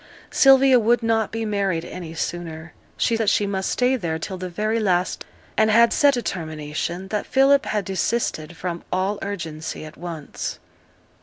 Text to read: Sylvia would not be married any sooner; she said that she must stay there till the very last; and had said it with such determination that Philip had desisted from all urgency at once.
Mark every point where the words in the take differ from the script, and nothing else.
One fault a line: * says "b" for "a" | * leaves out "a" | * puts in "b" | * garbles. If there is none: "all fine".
* leaves out "said"
* leaves out "it with such"